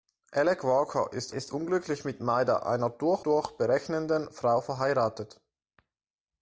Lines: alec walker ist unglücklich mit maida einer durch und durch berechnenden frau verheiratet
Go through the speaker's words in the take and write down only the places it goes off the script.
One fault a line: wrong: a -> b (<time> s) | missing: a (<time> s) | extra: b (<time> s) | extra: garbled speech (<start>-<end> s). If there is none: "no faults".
extra: ist (1.3 s)
missing: und (3.2 s)